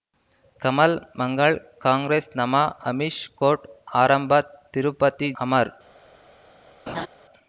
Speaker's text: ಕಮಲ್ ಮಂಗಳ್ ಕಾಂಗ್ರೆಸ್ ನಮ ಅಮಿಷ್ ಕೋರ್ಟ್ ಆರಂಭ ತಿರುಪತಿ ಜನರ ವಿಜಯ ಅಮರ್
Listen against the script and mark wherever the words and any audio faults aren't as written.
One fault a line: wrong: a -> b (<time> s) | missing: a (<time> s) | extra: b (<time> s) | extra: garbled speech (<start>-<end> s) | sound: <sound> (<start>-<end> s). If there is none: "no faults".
missing: ಜನರ ವಿಜಯ (5.3 s)
sound: laugh (6.9-7.1 s)